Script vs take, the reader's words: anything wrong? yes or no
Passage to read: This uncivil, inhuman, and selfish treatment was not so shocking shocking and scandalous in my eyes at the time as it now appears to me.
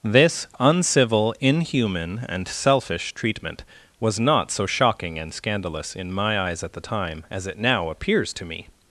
yes